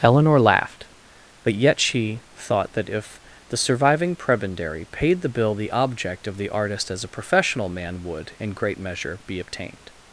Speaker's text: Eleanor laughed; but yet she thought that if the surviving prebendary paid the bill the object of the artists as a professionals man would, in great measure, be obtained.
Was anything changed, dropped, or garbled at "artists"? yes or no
yes